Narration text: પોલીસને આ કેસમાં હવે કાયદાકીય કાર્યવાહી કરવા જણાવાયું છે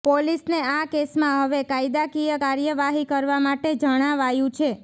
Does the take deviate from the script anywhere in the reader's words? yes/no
yes